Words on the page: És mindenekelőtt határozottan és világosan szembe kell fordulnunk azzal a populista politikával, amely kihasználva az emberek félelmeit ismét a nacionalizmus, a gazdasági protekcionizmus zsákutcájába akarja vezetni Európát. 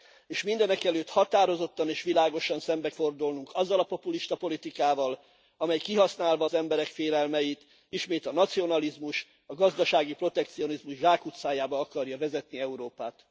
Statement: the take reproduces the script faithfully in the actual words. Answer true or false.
false